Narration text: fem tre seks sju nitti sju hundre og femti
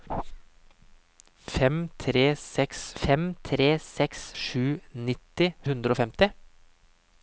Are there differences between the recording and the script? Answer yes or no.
yes